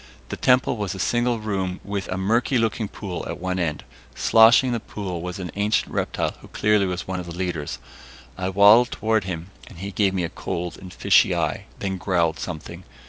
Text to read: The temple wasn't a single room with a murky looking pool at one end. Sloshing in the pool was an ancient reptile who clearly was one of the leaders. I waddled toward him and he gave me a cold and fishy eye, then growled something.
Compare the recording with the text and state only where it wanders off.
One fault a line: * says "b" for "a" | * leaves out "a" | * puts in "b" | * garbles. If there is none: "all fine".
* says "was" for "wasn't"